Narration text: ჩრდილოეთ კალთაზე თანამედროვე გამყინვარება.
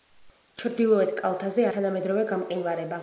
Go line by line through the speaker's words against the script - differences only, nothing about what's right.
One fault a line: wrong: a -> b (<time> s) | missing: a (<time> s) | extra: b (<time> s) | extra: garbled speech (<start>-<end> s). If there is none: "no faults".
no faults